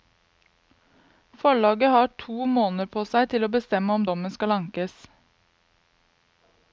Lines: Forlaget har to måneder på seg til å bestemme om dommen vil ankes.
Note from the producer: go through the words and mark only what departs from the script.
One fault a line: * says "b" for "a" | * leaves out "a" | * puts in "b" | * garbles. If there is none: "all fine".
* says "skal" for "vil"